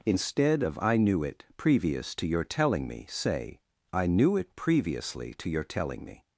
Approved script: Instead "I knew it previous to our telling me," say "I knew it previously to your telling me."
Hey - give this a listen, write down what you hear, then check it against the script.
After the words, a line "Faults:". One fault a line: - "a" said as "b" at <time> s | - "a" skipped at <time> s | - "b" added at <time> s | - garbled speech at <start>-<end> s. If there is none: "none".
Instead of "I knew it previous to your telling me," say "I knew it previously to your telling me."
Faults:
- "of" added at 0.6 s
- "our" said as "your" at 2.3 s